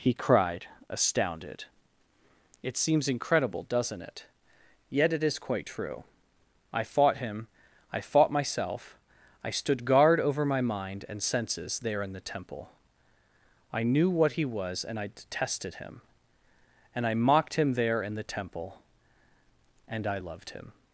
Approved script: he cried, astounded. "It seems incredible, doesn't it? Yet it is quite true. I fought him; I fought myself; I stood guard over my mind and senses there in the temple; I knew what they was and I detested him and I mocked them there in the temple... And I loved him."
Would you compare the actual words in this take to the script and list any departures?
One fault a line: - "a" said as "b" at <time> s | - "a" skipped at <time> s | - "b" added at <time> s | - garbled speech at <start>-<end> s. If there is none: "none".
- "they" said as "he" at 14.3 s
- "them" said as "him" at 17.5 s